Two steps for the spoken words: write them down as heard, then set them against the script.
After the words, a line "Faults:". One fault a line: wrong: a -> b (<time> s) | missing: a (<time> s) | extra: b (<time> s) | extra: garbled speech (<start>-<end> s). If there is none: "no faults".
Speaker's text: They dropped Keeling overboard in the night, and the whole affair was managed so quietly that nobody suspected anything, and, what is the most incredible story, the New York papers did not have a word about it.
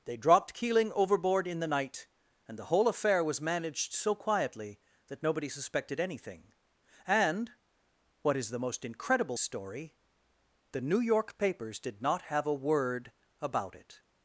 They dropped Keeling overboard in the night, and the whole affair was managed so quietly that nobody suspected anything, and, what is the most incredible story, the New York papers did not have a word about it.
Faults:
no faults